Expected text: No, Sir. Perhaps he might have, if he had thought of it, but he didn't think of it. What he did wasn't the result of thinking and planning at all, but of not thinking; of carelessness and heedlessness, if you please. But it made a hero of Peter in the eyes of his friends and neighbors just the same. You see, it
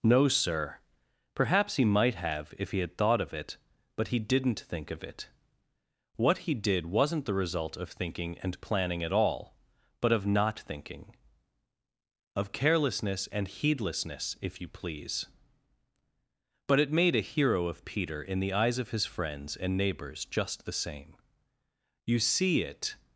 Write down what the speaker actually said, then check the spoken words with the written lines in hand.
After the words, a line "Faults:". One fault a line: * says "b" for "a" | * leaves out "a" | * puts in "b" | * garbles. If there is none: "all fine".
No, Sir. Perhaps he might have, if he had thought of it, but he didn't think of it. What he did wasn't the result of thinking and planning at all, but of not thinking; of carelessness and heedlessness, if you please. But it made a hero of Peter in the eyes of his friends and neighbors just the same. You see, it
Faults:
all fine